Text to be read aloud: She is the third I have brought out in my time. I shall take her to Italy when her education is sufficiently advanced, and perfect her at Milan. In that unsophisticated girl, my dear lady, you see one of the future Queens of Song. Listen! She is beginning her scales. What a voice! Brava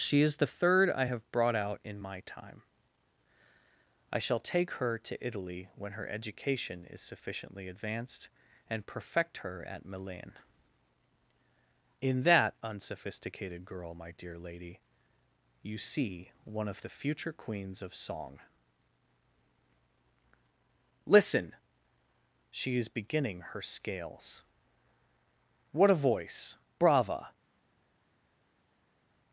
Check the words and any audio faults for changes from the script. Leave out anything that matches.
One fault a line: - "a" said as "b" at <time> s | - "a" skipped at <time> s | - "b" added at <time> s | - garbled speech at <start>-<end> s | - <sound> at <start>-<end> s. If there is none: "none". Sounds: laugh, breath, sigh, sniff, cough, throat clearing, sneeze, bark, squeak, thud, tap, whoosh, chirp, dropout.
none